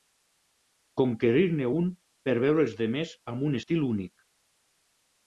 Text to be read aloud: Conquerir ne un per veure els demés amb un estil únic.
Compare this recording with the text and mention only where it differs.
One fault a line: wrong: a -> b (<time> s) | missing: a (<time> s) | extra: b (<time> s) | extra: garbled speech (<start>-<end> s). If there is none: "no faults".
no faults